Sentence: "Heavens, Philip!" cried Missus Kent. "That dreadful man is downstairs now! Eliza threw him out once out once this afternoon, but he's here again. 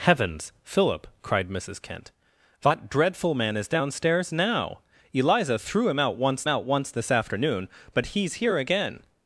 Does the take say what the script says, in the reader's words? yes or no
yes